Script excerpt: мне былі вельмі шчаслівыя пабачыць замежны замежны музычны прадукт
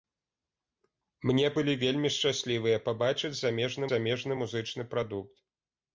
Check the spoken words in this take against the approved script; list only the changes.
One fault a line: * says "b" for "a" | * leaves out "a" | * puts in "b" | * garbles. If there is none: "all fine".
all fine